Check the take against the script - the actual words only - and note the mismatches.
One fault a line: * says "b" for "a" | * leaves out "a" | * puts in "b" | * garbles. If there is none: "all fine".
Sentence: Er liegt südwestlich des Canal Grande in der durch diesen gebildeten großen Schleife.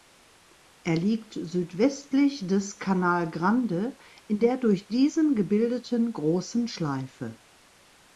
all fine